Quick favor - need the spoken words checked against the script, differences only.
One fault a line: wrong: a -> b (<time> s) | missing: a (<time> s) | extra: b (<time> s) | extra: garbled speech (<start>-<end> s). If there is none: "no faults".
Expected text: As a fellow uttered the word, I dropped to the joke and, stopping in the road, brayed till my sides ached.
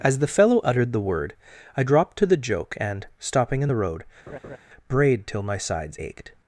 wrong: a -> the (0.2 s)